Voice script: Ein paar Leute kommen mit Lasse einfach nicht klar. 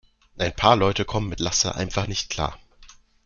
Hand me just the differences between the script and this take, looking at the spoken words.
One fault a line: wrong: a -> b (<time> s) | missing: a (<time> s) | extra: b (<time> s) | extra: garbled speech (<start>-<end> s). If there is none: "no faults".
no faults